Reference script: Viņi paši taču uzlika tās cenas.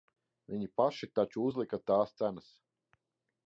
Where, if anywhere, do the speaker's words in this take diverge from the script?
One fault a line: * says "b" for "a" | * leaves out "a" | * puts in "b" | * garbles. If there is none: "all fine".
all fine